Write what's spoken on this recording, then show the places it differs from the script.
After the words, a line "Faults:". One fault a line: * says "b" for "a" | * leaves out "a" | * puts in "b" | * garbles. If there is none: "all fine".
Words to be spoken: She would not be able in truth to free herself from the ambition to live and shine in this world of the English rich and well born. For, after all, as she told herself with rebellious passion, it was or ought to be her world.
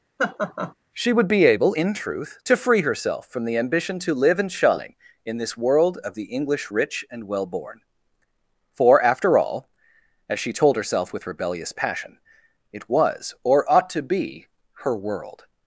She would be able in truth to free herself from the ambition to live and shine in this world of the English rich and well born. For, after all, as she told herself with rebellious passion, it was or ought to be her world.
Faults:
* leaves out "not"